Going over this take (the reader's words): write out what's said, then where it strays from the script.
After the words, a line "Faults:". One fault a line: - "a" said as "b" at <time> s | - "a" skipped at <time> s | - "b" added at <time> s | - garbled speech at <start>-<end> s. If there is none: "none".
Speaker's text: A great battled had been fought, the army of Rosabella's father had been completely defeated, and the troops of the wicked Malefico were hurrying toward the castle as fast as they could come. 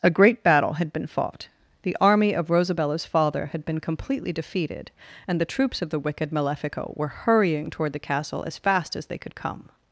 A great battle had been fought, the army of Rosabella's father had been completely defeated, and the troops of the wicked Malefico were hurrying toward the castle as fast as they could come.
Faults:
- "battled" said as "battle" at 0.4 s